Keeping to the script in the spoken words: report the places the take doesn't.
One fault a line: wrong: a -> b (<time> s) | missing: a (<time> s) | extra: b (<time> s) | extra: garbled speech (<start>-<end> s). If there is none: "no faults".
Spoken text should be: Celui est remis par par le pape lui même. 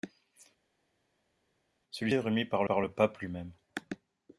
no faults